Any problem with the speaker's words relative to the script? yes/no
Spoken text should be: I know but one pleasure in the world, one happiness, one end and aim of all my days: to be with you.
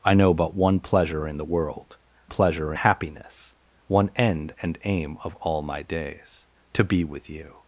yes